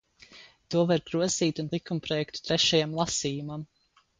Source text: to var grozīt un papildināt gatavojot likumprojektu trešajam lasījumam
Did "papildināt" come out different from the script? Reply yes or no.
yes